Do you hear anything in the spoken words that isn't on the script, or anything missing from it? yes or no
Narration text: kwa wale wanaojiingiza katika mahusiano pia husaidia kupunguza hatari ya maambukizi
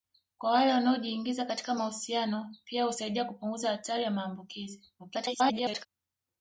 yes